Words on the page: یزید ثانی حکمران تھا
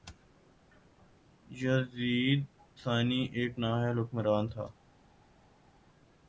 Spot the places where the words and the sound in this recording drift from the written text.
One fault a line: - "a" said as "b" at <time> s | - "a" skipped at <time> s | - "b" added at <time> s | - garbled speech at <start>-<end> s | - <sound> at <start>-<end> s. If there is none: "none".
- "ایک نااہل" added at 3.4 s